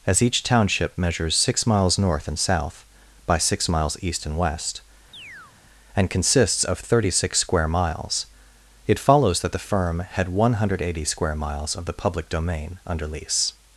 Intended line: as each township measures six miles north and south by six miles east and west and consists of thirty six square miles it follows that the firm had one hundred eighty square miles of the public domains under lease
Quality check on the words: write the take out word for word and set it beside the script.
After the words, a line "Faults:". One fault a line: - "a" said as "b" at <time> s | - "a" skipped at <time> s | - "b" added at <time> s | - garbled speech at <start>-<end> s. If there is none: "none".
as each township measures six miles north and south by six miles east and west and consists of thirty six square miles it follows that the firm had one hundred eighty square miles of the public domain under lease
Faults:
- "domains" said as "domain" at 12.3 s